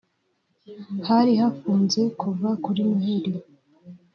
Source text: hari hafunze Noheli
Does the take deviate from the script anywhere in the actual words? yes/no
yes